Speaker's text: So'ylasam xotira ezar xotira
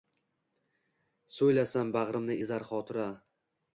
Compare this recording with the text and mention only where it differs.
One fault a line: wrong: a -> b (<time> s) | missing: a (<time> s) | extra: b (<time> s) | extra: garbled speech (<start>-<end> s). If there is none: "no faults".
wrong: xotira -> bag'rimni (2.0 s)